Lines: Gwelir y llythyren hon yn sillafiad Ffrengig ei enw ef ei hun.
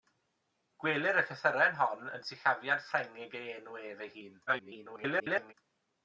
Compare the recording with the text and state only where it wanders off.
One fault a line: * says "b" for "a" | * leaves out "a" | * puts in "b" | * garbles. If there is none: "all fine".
* garbles